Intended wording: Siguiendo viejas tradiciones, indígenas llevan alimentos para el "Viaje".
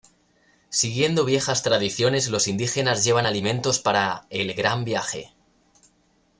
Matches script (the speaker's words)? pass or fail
fail